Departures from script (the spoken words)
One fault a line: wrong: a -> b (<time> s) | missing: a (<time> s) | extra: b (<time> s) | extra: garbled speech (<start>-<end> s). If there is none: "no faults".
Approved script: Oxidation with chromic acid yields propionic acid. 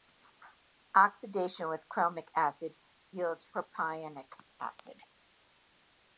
no faults